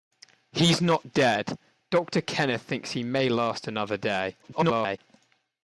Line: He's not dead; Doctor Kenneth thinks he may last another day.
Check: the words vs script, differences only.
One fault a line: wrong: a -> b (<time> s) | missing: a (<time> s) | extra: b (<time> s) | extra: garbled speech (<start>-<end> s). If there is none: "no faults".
extra: garbled speech (4.4-5.0 s)